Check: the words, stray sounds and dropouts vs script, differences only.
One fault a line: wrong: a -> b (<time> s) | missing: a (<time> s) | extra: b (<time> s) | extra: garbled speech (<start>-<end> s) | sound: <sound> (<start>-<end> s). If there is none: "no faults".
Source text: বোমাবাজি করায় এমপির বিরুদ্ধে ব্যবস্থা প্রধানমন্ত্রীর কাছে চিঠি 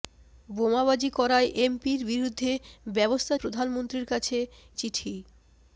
no faults